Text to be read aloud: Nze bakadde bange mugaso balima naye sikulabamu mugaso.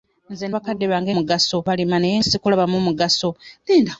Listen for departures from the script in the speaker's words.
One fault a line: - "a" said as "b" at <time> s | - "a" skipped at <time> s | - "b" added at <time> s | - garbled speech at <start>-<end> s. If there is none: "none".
none